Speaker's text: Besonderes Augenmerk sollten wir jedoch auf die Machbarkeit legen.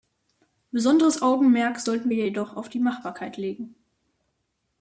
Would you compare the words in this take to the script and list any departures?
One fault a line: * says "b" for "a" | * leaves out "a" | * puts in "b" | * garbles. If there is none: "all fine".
all fine